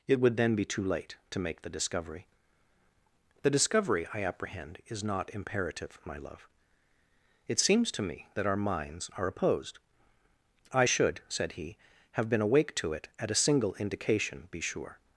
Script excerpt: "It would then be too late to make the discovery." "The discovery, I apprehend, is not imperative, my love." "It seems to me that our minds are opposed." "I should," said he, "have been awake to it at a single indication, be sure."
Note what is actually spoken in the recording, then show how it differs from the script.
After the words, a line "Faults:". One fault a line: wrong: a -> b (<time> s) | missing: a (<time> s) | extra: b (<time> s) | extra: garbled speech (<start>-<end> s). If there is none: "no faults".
"It would then be too late to make the discovery." "The discovery, I apprehend, is not imperative, my love." "It seems to me that our minds are opposed." "I should," said he, "have been awake to it at a single indication, be sure."
Faults:
no faults